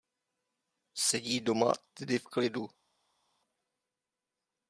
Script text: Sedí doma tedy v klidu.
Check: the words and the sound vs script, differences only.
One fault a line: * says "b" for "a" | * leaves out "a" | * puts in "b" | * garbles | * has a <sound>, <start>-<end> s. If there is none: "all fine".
all fine